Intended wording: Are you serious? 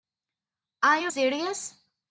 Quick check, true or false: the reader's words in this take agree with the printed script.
true